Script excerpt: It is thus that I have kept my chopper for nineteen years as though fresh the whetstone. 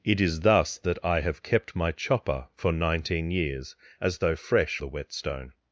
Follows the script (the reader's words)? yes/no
yes